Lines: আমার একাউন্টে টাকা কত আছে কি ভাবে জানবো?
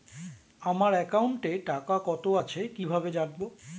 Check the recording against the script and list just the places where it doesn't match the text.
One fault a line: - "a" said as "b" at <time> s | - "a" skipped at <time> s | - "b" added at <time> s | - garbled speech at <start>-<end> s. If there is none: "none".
none